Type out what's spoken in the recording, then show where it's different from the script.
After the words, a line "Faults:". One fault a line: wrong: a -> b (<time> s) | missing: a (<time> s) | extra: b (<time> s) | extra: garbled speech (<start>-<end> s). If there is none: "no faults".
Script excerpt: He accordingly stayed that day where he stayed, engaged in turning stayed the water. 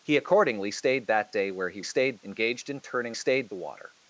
He accordingly stayed that day where he stayed, engaged in turning stayed the water.
Faults:
no faults